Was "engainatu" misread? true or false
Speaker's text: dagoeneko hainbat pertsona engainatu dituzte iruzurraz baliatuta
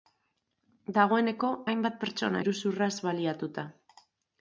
true